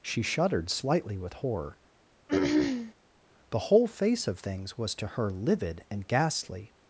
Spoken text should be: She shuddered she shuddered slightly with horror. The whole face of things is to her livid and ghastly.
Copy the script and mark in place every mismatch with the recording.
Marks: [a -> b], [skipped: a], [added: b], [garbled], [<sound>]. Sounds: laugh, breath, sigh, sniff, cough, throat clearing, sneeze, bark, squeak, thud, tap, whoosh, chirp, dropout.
She shuddered [skipped: she shuddered] slightly with horror. [throat clearing] The whole face of things [is -> was] to her livid and ghastly.